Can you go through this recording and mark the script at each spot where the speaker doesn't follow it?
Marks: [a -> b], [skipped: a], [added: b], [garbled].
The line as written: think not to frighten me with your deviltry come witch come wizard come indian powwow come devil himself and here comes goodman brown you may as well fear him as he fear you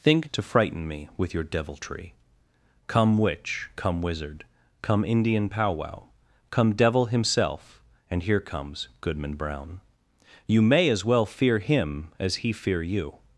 think [skipped: not] to frighten me with your deviltry come witch come wizard come indian powwow come devil himself and here comes goodman brown you may as well fear him as he fear you